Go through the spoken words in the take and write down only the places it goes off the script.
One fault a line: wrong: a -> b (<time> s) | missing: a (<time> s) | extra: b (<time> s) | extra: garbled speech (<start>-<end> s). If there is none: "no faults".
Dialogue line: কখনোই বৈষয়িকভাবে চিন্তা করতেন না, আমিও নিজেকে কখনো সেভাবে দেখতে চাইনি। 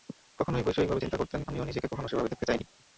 missing: না (1.4 s)